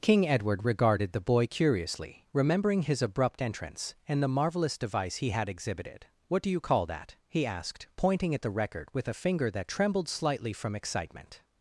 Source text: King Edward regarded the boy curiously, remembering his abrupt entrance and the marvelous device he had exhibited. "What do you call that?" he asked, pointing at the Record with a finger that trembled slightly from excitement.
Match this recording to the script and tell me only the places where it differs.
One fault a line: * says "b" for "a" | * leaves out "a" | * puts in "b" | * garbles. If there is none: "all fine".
all fine